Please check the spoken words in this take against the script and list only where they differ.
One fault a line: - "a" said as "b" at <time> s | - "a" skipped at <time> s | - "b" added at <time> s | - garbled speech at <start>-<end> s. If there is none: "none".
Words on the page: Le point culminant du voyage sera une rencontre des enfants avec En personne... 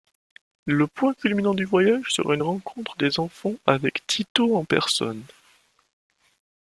- "Tito" added at 4.1 s